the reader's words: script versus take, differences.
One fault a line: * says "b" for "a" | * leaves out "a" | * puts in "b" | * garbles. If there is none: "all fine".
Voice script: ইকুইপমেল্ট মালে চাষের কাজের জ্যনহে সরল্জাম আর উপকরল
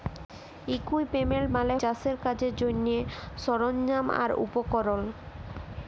all fine